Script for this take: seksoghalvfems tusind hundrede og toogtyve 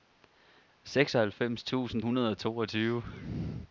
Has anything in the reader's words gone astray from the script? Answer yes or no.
no